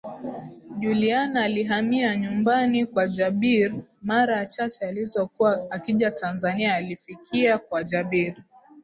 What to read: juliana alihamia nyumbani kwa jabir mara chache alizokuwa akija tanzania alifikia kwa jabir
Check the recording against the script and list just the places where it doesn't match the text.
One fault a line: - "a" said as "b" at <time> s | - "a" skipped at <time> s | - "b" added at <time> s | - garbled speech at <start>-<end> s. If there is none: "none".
none